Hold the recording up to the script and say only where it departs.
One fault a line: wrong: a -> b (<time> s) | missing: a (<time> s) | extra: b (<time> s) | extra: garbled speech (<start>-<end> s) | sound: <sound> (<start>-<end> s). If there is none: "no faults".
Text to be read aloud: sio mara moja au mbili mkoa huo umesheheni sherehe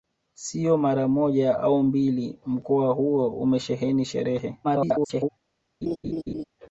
extra: garbled speech (4.6-5.3 s)
sound: laugh (5.8-6.4 s)